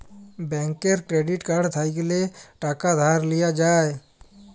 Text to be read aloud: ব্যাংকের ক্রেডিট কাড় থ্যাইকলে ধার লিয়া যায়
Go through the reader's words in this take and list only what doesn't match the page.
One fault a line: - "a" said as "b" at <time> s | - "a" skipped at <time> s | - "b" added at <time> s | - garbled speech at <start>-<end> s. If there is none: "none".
- "টাকা" added at 2.6 s